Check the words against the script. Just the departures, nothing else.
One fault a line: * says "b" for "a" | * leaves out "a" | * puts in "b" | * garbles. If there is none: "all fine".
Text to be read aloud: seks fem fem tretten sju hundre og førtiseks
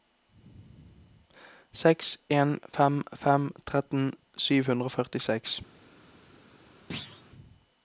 * puts in "en"